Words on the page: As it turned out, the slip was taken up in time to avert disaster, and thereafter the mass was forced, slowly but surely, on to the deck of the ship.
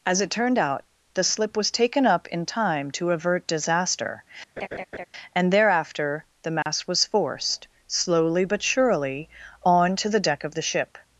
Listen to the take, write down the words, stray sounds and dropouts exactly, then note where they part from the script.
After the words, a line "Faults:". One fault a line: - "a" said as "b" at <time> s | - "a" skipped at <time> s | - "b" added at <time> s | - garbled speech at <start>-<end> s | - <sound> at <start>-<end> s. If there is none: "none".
As it turned out, the slip was taken up in time to avert disaster, and thereafter the mass was forced, slowly but surely, on to the deck of the ship.
Faults:
- laugh at 4.6-5.1 s
- dropout at 6.6-6.7 s